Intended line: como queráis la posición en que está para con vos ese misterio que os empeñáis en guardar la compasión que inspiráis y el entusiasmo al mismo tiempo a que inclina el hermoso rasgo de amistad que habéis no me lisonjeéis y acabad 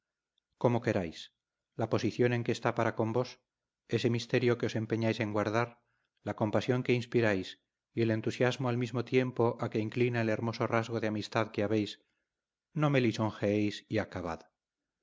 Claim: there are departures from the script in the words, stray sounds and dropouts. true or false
false